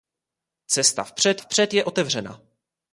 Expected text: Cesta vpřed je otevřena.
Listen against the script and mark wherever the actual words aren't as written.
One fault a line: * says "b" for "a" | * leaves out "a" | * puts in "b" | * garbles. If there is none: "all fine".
* puts in "vpřed"